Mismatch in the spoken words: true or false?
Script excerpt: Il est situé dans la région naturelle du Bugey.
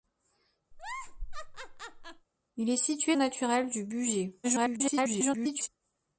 true